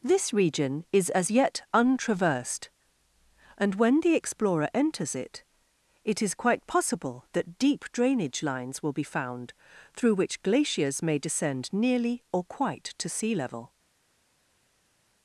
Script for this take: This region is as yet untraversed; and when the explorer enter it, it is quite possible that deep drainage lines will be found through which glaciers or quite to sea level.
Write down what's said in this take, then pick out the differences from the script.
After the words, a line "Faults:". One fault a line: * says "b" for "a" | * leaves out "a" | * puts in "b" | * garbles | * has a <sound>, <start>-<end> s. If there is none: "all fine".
This region is as yet untraversed; and when the explorer enters it, it is quite possible that deep drainage lines will be found through which glaciers may descend nearly or quite to sea level.
Faults:
* says "enters" for "enter"
* puts in "may descend nearly"